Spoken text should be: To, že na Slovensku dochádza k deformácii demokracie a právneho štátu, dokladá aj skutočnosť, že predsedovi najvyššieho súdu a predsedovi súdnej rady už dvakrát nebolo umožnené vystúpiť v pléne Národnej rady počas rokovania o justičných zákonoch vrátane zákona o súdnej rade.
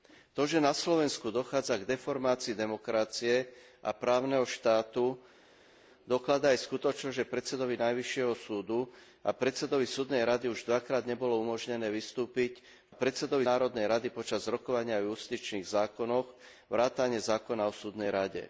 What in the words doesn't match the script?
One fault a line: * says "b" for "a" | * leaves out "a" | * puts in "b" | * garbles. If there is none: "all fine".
* says "predsedovi" for "pléne"